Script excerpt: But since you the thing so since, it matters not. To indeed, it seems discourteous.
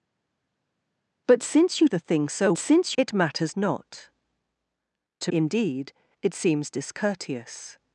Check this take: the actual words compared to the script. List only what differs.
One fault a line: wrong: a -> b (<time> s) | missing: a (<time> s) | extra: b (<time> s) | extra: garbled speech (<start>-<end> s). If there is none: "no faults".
no faults